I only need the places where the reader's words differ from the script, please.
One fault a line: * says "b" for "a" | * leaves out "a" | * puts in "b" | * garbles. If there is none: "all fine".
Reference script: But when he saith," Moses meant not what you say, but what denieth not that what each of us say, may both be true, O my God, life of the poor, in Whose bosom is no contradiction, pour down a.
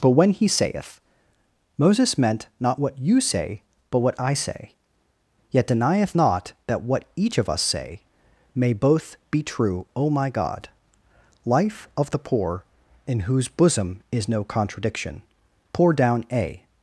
* puts in "I say yet"